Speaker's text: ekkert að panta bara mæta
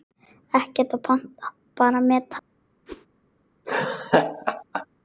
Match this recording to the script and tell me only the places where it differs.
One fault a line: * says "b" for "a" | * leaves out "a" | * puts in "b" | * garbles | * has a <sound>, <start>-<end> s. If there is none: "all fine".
* has a whoosh, 2.9-3.1 s
* has a laugh, 3.6-4.9 s